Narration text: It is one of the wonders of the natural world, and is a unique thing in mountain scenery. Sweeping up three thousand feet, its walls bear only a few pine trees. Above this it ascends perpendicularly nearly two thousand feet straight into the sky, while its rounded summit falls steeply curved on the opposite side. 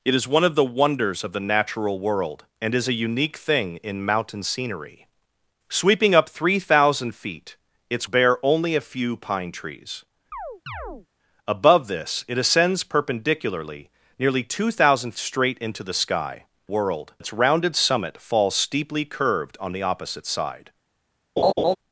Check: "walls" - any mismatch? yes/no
yes